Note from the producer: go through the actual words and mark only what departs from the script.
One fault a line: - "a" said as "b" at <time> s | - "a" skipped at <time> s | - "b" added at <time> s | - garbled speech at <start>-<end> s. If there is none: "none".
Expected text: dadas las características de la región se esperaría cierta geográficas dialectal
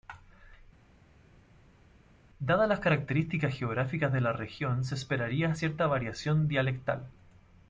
- "geográficas" added at 3.5 s
- "geográficas" said as "variación" at 5.9 s